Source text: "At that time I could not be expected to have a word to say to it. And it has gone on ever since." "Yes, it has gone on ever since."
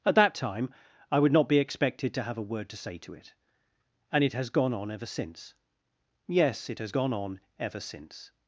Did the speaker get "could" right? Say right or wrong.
wrong